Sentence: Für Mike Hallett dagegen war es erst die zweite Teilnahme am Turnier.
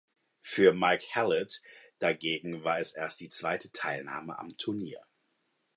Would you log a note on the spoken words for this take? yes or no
no